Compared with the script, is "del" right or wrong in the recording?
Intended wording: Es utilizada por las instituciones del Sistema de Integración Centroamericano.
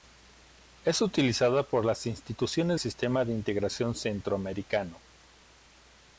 wrong